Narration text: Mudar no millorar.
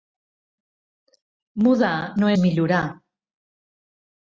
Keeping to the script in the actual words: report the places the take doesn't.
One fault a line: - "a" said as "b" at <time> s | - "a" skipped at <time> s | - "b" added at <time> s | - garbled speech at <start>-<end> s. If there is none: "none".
none